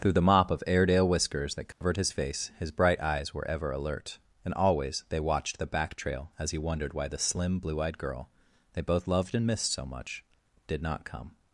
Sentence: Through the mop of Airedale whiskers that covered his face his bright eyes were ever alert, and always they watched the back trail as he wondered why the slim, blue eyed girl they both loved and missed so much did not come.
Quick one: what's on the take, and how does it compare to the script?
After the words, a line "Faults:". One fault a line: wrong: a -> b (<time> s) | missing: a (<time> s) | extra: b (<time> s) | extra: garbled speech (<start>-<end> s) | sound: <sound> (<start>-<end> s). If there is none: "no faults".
Through the mop of Airedale whiskers that covered his face his bright eyes were ever alert, and always they watched the back trail as he wondered why the slim, blue eyed girl they both loved and missed so much did not come.
Faults:
sound: dropout (1.7-1.8 s)